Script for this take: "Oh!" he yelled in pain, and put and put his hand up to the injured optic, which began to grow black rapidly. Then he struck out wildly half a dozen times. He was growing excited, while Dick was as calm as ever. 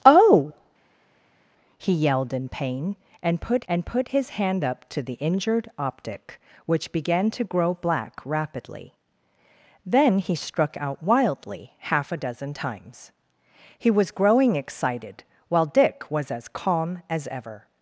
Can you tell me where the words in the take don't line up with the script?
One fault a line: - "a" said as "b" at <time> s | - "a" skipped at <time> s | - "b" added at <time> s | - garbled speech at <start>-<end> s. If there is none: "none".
none